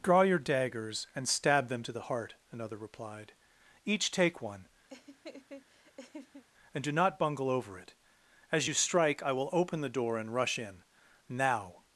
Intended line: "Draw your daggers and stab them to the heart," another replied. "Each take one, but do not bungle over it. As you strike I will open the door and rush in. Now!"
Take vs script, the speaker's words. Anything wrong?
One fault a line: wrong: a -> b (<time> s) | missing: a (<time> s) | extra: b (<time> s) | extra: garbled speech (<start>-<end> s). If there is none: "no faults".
wrong: but -> and (6.7 s)